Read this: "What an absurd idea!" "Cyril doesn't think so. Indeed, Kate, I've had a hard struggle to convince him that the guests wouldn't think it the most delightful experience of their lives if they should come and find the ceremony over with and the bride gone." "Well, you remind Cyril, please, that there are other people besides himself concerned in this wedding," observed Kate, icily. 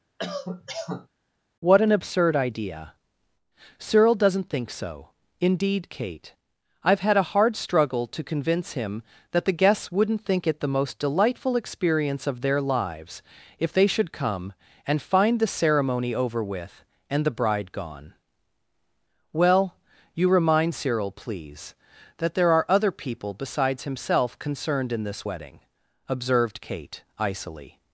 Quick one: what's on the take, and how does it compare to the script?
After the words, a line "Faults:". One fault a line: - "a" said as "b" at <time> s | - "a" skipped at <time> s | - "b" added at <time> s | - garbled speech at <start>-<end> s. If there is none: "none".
"What an absurd idea!" "Cyril doesn't think so. Indeed, Kate, I've had a hard struggle to convince him that the guests wouldn't think it the most delightful experience of their lives if they should come and find the ceremony over with and the bride gone." "Well, you remind Cyril, please, that there are other people besides himself concerned in this wedding," observed Kate, icily.
Faults:
none